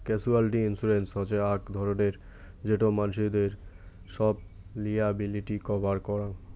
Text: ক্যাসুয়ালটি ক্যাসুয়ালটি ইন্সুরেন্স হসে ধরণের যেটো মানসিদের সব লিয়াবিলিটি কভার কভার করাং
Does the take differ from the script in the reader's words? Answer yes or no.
yes